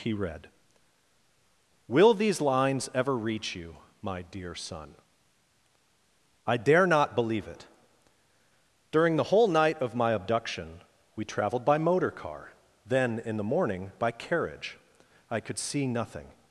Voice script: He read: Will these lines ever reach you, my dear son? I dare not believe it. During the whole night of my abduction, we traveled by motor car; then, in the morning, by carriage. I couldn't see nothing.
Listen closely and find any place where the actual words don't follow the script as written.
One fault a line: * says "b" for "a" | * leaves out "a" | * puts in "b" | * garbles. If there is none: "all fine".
* says "could" for "couldn't"